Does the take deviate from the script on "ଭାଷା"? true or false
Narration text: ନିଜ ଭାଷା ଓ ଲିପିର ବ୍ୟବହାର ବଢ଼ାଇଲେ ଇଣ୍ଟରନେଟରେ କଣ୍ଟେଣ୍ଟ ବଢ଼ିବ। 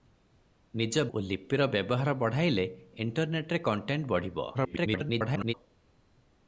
true